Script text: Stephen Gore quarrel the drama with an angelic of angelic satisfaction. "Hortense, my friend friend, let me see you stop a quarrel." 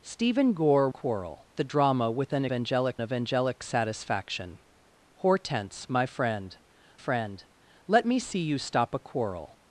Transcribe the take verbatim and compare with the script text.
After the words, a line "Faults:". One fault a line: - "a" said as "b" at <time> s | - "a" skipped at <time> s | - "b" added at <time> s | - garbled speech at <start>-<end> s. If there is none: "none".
Stephen Gore quarrel the drama with an angelic of angelic satisfaction. "Hortense, my friend friend, let me see you stop a quarrel."
Faults:
none